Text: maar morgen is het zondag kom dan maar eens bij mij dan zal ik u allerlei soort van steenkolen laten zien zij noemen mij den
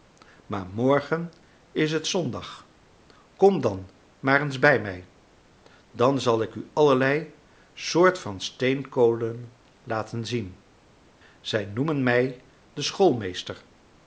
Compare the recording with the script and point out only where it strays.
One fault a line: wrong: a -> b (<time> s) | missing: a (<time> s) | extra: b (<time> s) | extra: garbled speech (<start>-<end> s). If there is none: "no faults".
no faults